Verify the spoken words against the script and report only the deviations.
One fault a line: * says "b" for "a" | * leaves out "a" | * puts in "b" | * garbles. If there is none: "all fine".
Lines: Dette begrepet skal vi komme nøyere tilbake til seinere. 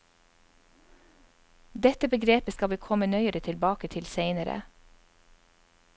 all fine